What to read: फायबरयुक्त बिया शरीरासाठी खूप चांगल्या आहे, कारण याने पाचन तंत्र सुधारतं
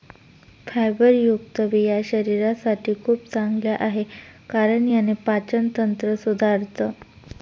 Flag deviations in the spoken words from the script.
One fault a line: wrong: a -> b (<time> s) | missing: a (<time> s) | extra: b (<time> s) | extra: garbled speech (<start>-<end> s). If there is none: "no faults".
no faults